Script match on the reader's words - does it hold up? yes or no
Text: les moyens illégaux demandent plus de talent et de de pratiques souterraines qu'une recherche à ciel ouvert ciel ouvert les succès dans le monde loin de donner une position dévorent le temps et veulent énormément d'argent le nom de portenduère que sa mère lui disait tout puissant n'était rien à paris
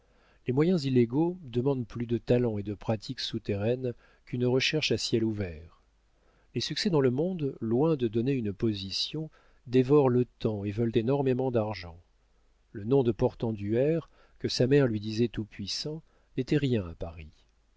no